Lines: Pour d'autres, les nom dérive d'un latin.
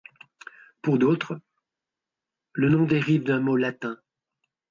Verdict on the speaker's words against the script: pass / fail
fail